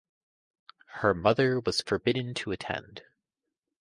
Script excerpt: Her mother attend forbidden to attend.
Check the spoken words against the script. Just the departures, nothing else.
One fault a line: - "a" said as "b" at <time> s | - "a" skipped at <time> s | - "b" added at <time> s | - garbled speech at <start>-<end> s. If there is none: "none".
- "attend" said as "was" at 1.6 s